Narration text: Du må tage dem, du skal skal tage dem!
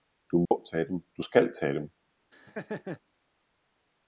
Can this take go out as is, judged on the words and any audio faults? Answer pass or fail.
fail